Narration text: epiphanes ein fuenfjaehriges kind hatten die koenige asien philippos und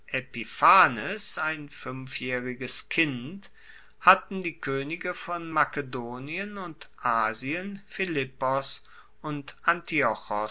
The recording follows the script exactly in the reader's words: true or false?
false